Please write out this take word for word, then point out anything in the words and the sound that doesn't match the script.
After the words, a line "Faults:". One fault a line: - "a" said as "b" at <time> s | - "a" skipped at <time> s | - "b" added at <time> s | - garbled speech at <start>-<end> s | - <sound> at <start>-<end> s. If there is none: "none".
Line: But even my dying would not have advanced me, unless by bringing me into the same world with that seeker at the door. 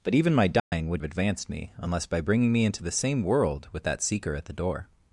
But even my dying would have advanced me, unless by bringing me into the same world with that seeker at the door.
Faults:
- dropout at 0.6-0.7 s
- "not" skipped at 1.0 s